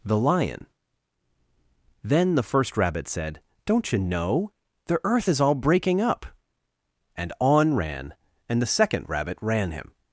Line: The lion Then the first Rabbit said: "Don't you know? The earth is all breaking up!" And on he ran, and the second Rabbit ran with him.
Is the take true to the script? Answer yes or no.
no